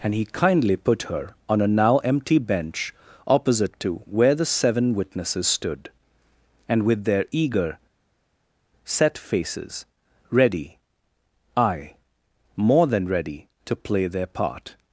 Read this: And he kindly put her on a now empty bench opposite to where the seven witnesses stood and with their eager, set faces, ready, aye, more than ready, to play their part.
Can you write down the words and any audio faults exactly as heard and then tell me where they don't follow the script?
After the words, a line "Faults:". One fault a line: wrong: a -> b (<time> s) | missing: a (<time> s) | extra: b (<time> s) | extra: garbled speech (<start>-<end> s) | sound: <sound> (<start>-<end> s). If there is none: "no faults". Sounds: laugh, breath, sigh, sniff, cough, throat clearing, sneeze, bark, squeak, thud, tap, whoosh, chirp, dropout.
And he kindly put her on a now empty bench opposite to where the seven witnesses stood and with their eager, set faces, ready, aye, more than ready, to play their part.
Faults:
no faults